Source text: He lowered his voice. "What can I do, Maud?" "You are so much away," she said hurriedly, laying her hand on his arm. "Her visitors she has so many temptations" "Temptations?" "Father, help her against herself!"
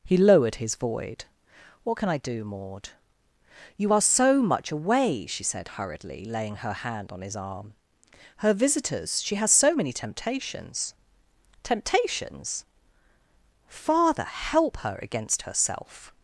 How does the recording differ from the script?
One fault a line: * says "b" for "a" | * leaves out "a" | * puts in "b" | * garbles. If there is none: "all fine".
* says "void" for "voice"